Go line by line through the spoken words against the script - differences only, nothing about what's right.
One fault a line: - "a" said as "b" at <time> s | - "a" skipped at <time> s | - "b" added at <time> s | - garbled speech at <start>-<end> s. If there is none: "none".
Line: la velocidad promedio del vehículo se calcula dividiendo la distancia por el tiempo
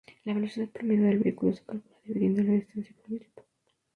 none